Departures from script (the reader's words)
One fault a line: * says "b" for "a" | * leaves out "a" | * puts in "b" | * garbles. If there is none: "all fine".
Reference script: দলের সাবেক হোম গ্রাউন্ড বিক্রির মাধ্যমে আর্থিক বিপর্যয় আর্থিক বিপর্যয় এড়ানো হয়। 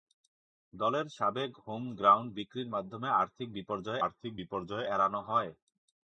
all fine